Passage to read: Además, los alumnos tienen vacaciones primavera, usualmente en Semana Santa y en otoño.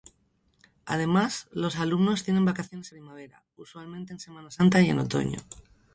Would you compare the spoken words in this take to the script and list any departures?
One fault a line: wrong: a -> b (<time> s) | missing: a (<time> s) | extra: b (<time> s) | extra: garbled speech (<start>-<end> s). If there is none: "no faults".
no faults